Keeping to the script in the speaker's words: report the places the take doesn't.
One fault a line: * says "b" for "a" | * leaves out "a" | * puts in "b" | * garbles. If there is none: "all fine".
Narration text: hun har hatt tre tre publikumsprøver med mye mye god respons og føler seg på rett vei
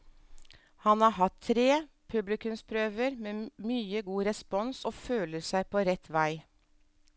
* says "han" for "hun"
* leaves out "tre"
* leaves out "mye"